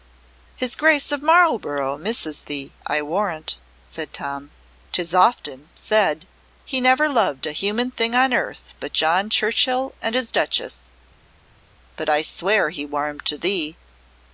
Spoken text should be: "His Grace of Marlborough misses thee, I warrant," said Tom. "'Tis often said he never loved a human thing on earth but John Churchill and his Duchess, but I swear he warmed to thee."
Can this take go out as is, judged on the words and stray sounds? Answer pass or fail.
pass